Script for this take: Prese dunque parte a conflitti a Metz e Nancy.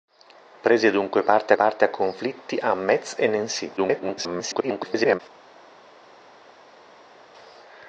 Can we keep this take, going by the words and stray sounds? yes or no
no